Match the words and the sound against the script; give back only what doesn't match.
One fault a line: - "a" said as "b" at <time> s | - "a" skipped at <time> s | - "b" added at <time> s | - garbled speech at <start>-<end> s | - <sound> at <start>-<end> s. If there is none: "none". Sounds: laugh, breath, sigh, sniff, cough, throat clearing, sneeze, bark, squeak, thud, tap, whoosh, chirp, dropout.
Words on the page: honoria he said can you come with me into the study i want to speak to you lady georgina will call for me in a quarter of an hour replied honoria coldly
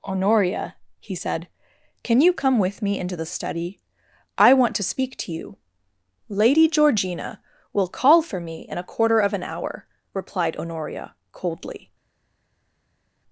none